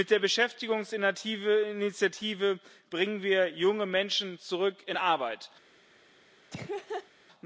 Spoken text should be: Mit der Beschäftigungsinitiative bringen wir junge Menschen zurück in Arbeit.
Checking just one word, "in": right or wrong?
right